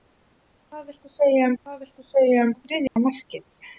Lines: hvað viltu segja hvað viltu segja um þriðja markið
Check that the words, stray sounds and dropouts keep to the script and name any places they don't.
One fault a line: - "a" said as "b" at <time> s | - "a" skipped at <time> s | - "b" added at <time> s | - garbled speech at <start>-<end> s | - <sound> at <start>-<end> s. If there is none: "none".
- dropout at 2.9-3.0 s